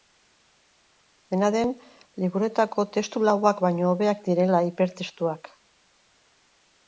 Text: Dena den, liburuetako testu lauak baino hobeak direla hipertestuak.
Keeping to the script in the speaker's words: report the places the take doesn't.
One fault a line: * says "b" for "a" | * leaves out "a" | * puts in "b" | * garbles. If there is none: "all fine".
all fine